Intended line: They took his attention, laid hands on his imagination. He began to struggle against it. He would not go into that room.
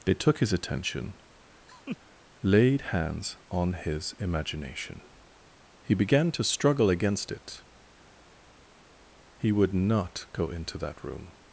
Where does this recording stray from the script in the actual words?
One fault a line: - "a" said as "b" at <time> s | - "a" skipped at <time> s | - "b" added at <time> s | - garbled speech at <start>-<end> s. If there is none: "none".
none